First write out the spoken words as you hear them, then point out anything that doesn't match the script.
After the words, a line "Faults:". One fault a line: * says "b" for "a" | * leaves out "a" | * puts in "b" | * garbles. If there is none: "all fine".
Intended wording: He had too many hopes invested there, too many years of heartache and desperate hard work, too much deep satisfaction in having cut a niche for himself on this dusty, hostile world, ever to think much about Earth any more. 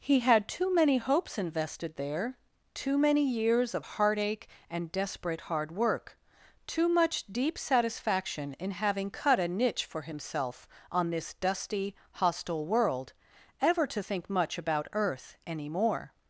He had too many hopes invested there, too many years of heartache and desperate hard work, too much deep satisfaction in having cut a niche for himself on this dusty, hostile world, ever to think much about Earth any more.
Faults:
all fine